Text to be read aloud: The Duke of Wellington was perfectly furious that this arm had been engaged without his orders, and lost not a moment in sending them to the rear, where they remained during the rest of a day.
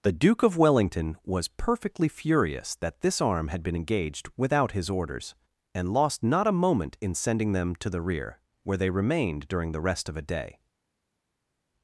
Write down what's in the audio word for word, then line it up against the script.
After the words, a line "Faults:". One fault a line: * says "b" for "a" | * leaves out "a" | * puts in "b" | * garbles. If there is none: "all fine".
The Duke of Wellington was perfectly furious that this arm had been engaged without his orders, and lost not a moment in sending them to the rear, where they remained during the rest of a day.
Faults:
all fine